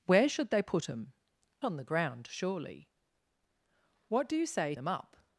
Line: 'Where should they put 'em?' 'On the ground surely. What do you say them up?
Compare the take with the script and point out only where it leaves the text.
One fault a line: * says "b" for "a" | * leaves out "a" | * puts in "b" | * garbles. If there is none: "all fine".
all fine